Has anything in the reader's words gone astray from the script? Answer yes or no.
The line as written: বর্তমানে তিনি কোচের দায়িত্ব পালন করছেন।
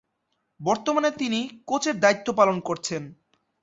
no